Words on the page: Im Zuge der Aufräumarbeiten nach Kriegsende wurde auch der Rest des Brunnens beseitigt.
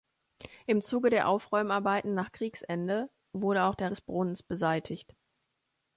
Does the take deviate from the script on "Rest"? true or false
true